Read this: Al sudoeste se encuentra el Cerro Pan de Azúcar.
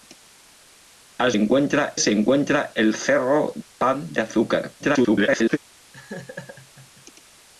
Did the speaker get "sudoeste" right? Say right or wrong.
wrong